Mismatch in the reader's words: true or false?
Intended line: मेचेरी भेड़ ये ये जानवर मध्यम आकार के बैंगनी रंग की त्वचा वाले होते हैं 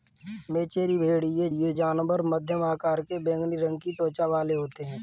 false